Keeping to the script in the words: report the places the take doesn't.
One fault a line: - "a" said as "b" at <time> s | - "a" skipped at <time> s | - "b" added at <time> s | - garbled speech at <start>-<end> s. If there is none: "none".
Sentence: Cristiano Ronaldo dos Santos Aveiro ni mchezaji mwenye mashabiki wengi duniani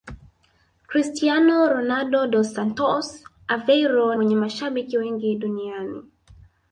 - "ni mchezaji" skipped at 4.2 s